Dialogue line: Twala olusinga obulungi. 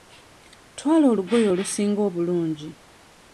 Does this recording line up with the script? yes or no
no